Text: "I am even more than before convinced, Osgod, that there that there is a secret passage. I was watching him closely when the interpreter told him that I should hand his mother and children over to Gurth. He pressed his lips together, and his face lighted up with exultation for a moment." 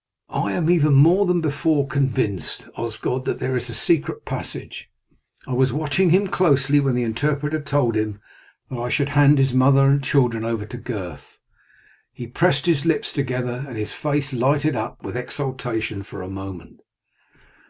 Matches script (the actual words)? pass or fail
fail